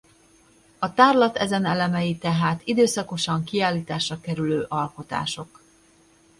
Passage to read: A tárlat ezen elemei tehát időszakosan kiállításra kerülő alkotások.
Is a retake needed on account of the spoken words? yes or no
no